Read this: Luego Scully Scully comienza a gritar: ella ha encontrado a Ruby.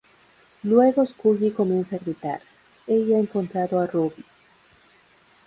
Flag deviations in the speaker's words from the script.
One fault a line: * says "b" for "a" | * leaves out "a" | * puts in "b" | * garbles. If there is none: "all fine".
* leaves out "Scully"